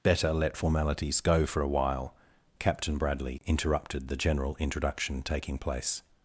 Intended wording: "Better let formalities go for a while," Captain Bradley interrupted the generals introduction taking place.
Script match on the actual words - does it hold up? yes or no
no